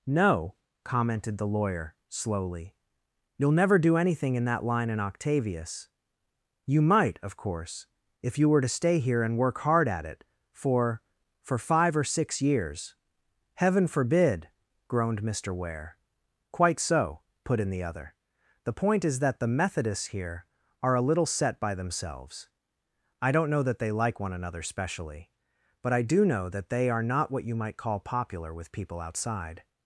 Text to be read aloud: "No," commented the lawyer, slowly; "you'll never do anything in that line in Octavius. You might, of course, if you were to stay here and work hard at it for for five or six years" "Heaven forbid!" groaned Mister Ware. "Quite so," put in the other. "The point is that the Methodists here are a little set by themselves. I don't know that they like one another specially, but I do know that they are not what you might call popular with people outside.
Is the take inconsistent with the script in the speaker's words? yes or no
no